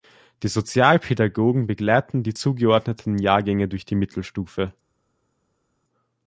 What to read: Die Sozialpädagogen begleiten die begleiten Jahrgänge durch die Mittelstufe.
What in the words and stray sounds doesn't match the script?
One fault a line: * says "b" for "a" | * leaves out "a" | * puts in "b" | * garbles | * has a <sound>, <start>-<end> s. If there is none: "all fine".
* says "zugeordneten" for "begleiten"